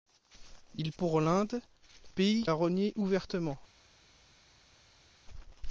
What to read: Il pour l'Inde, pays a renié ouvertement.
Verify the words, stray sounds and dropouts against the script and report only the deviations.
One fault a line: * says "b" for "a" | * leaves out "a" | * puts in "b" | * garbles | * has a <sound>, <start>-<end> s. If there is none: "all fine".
all fine